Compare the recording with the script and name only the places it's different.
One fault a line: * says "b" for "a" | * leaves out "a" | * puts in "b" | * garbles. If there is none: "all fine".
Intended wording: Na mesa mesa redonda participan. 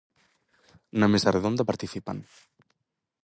* leaves out "mesa"